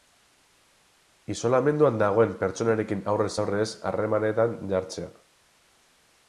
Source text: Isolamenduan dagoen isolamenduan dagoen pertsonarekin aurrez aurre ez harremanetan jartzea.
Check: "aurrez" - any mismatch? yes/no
no